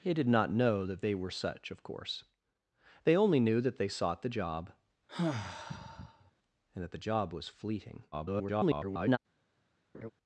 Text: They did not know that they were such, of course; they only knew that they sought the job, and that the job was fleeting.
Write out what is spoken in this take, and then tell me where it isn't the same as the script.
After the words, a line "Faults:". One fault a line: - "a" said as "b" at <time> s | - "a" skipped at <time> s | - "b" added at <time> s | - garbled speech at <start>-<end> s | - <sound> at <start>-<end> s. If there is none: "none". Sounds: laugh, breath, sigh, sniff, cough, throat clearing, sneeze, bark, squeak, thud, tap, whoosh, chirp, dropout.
They did not know that they were such, of course; they only knew that they sought the job, and that the job was fleeting. [garbled]
Faults:
- sigh at 5.1-6.3 s
- garbled speech at 8.1-9.2 s
- laugh at 9.9-10.1 s